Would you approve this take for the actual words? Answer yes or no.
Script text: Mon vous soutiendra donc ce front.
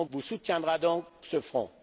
yes